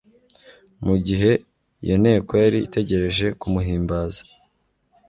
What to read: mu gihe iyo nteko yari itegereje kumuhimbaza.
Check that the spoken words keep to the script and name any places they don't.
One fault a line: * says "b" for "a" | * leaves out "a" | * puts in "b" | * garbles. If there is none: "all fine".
all fine